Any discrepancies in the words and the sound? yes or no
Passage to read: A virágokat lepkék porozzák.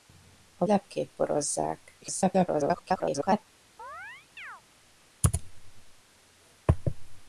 yes